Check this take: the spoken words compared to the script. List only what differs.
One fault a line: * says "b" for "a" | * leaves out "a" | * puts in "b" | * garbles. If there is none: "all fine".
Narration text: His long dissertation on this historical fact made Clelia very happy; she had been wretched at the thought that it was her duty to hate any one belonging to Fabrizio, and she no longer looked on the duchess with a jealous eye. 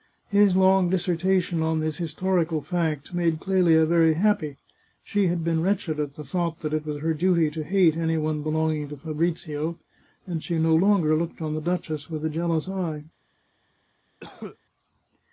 all fine